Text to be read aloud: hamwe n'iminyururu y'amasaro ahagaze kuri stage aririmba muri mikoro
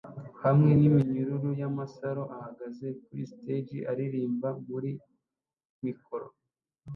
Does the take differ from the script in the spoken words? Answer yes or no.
no